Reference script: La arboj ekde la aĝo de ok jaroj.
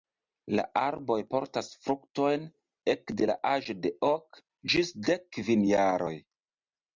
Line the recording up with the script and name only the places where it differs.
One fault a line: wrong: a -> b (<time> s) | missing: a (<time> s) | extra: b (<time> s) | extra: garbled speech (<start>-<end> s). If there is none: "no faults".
extra: portas fruktojn (1.3 s)
extra: ĝis dek kvin (4.8 s)